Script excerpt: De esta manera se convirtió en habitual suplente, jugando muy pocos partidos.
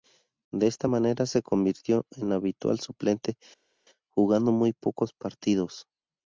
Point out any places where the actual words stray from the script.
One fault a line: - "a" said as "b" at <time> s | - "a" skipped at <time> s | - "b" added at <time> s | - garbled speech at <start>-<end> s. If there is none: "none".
none